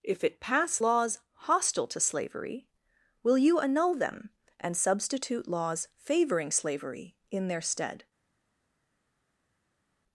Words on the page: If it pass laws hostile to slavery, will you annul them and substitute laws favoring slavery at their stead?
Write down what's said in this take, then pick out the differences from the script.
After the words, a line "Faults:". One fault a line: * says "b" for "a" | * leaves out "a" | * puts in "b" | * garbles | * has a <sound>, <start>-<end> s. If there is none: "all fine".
If it pass laws hostile to slavery, will you annul them and substitute laws favoring slavery in their stead?
Faults:
* says "in" for "at"